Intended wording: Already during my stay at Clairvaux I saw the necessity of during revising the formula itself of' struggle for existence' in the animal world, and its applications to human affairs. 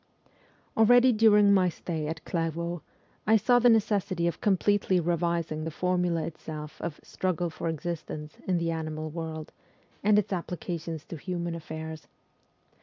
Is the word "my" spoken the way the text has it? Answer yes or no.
yes